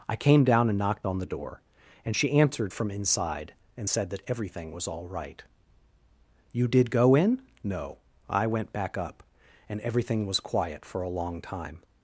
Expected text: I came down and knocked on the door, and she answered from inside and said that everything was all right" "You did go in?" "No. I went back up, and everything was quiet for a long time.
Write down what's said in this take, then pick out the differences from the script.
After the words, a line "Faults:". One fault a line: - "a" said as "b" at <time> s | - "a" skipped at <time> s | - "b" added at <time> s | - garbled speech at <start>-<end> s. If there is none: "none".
I came down and knocked on the door, and she answered from inside and said that everything was all right" "You did go in?" "No. I went back up, and everything was quiet for a long time.
Faults:
none